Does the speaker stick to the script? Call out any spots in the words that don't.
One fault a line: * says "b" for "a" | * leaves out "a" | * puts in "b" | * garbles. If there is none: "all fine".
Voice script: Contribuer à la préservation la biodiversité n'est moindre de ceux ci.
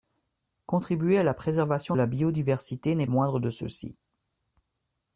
all fine